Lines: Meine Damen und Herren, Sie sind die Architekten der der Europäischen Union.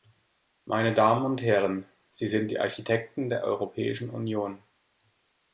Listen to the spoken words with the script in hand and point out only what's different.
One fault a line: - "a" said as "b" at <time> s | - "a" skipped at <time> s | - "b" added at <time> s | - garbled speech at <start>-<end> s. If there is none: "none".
- "der" skipped at 3.4 s